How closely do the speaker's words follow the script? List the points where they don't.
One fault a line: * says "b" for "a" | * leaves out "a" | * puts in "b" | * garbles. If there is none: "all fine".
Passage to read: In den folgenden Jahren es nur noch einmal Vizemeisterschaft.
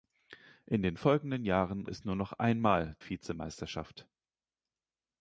all fine